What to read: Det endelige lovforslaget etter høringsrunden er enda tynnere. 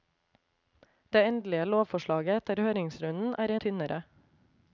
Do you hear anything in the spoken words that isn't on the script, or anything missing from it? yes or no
yes